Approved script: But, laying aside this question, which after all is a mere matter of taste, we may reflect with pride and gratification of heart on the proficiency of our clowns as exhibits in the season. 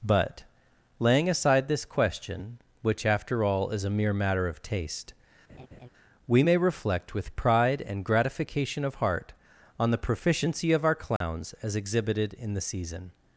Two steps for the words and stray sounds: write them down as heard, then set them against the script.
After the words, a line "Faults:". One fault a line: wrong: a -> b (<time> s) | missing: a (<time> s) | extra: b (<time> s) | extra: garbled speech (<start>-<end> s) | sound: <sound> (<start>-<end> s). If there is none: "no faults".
But, laying aside this question, which after all is a mere matter of taste, we may reflect with pride and gratification of heart on the proficiency of our clowns as exhibited in the season.
Faults:
sound: laugh (5.5-5.9 s)
sound: dropout (11.2-11.2 s)
wrong: exhibits -> exhibited (11.8 s)